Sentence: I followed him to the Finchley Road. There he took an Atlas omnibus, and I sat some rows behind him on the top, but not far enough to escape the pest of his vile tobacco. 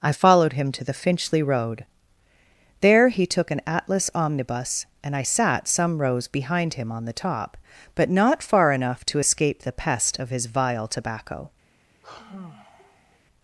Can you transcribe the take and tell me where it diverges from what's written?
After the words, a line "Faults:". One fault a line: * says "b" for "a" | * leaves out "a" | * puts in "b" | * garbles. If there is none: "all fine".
I followed him to the Finchley Road. There he took an Atlas omnibus, and I sat some rows behind him on the top, but not far enough to escape the pest of his vile tobacco.
Faults:
all fine